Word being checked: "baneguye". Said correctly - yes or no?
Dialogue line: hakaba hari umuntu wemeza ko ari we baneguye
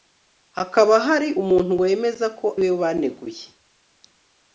yes